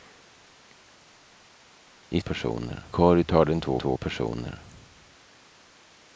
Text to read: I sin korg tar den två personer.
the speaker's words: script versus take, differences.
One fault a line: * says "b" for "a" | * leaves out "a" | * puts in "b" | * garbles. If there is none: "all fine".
* says "personer" for "sin"
* puts in "två"